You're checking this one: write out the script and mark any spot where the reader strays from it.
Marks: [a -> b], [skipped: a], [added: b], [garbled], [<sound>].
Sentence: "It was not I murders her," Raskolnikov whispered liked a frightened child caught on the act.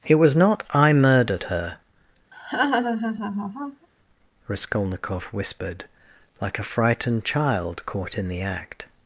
"It was not I [murders -> murdered] her," [laugh] Raskolnikov whispered [liked -> like] a frightened child caught [on -> in] the act.